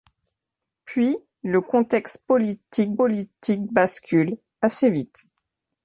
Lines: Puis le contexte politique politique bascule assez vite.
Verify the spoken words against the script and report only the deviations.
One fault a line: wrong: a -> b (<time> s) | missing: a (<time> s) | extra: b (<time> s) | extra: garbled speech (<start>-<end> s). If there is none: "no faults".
no faults